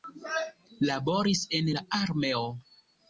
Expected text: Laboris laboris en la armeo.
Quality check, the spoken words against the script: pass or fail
fail